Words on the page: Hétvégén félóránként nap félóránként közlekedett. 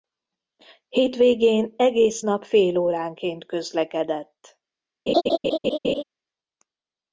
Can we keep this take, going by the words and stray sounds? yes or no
no